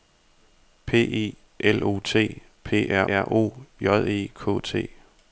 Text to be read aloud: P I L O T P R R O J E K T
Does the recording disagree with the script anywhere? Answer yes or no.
no